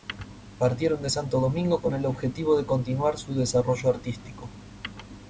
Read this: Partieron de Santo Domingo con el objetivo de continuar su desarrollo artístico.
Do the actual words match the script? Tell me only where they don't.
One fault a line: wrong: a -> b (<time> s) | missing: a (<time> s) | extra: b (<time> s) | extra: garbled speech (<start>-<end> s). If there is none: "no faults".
no faults